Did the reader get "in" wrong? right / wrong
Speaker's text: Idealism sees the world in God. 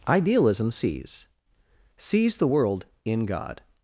right